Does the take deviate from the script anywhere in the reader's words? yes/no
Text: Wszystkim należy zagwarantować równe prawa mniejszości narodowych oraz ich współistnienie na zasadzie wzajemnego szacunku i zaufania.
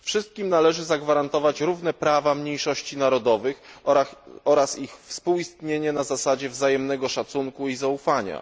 no